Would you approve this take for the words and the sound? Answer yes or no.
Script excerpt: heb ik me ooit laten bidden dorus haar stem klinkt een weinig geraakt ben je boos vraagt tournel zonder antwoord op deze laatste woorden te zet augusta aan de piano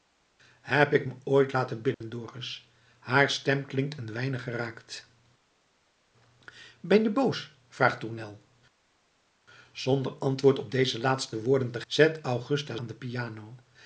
no